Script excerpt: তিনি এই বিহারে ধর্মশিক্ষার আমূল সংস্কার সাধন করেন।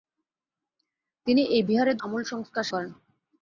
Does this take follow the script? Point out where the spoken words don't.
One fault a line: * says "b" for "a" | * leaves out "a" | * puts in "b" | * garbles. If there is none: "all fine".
* leaves out "ধর্মশিক্ষার"
* leaves out "সাধন"